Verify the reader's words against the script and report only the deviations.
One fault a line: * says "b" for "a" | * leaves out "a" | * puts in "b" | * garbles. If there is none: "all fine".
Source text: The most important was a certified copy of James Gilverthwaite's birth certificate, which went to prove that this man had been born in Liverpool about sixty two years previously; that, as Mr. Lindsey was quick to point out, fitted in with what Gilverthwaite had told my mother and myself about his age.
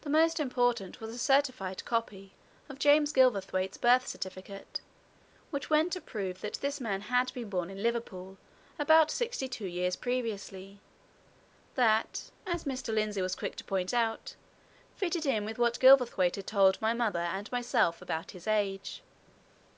all fine